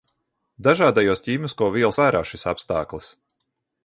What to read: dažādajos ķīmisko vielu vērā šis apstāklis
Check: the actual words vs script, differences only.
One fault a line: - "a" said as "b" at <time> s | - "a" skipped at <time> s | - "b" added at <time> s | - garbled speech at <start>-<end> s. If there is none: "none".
none